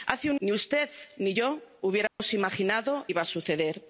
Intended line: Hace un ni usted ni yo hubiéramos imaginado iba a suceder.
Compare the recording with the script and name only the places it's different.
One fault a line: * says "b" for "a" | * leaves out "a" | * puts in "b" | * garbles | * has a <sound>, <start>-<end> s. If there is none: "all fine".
* has a dropout, 2.1-2.2 s